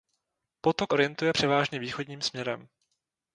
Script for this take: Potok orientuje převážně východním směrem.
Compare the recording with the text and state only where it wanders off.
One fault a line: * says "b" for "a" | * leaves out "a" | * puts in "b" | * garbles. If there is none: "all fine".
all fine